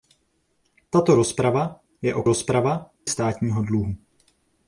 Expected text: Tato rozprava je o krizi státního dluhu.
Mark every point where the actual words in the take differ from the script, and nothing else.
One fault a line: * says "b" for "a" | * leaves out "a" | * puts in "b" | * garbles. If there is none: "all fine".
* says "rozprava" for "krizi"